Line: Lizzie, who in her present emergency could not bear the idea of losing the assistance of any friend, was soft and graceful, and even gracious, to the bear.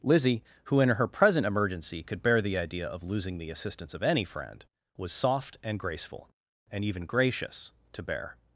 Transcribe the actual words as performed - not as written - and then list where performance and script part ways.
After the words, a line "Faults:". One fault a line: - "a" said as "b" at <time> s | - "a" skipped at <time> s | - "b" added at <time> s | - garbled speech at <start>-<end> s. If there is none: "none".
Lizzie, who in her present emergency could bear the idea of losing the assistance of any friend, was soft and graceful, and even gracious, to bear.
Faults:
- "not" skipped at 2.2 s
- "the" skipped at 8.0 s